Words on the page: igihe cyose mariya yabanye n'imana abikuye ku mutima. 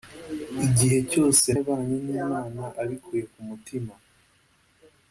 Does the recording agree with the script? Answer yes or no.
no